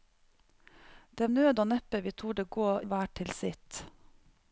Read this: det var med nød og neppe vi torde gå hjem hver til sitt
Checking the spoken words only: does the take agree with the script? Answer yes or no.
no